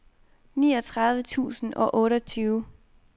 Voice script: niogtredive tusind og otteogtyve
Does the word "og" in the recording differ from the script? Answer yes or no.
no